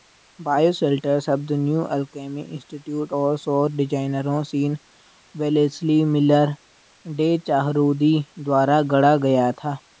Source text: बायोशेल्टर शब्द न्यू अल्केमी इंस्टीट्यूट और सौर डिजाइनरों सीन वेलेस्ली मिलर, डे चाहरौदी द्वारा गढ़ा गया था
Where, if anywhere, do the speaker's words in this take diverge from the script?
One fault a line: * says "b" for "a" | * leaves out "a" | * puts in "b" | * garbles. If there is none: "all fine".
all fine